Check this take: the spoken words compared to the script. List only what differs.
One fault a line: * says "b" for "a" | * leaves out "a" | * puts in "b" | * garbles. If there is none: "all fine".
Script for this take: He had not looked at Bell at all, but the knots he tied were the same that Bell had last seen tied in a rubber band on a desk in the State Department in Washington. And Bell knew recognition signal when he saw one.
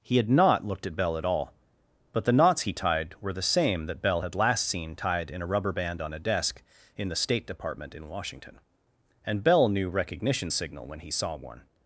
all fine